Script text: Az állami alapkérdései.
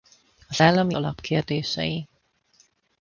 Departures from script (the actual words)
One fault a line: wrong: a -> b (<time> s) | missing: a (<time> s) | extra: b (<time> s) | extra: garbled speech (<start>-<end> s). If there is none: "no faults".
no faults